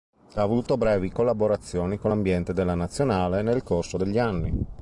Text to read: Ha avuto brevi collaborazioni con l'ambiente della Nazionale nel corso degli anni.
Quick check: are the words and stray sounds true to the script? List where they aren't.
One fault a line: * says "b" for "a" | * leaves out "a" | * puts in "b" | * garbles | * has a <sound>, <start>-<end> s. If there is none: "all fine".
all fine